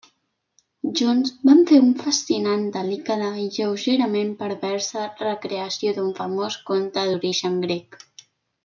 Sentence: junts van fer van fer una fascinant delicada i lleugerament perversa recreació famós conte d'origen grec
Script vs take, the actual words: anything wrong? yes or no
yes